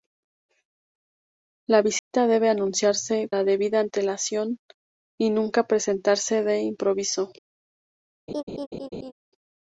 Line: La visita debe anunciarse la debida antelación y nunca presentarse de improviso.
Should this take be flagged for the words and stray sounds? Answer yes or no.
yes